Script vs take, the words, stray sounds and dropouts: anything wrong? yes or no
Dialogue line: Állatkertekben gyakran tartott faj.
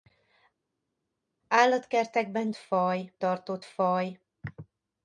yes